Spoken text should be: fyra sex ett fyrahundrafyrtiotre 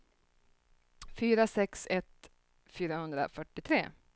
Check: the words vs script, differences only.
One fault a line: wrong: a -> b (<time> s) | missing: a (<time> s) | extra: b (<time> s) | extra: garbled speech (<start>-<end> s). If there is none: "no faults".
no faults